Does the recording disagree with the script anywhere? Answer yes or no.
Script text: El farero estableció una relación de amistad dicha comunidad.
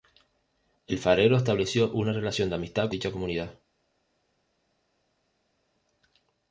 no